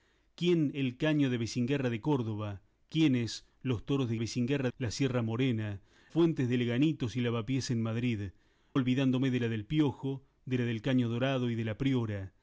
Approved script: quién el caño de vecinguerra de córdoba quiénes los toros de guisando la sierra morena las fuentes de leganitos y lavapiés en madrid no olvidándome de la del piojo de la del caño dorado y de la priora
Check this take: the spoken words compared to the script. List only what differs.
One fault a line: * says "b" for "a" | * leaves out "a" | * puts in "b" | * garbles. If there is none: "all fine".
* says "vecinguerra" for "guisando"
* leaves out "las"
* leaves out "no"